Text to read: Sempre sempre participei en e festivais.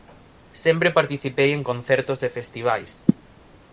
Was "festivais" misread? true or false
false